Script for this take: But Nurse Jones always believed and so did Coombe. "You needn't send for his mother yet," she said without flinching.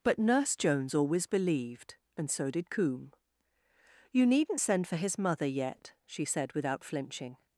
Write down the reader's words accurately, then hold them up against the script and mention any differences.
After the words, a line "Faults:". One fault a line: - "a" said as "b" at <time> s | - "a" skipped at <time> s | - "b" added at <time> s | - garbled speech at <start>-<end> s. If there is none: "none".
But Nurse Jones always believed and so did Coombe. "You needn't send for his mother yet," she said without flinching.
Faults:
none